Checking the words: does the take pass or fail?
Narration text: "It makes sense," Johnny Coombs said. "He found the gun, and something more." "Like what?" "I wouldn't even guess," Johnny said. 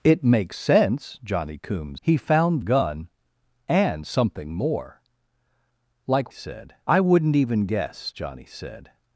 fail